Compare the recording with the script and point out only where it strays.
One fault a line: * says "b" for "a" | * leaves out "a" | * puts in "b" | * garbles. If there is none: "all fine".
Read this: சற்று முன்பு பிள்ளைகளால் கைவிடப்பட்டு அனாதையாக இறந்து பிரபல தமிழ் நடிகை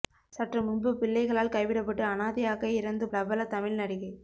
all fine